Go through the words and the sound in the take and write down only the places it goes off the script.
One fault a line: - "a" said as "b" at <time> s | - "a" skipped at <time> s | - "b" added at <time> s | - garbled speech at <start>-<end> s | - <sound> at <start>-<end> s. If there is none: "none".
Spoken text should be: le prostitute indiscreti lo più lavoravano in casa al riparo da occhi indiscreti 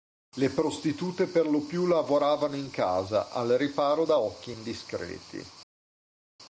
- "indiscreti" said as "per" at 1.3 s